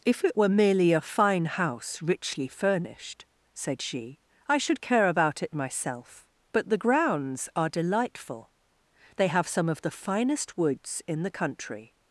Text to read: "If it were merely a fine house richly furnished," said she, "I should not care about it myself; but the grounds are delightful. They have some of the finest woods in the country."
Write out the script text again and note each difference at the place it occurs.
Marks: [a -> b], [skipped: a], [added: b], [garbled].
"If it were merely a fine house richly furnished," said she, "I should [skipped: not] care about it myself; but the grounds are delightful. They have some of the finest woods in the country."